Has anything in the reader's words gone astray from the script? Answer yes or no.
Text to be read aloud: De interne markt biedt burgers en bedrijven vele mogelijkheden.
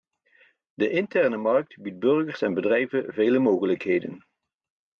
no